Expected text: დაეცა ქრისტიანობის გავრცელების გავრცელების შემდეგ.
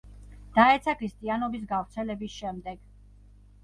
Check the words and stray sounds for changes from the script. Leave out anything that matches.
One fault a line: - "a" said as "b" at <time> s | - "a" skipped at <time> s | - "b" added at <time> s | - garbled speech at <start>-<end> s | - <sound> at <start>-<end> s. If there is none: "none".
- "გავრცელების" skipped at 2.4 s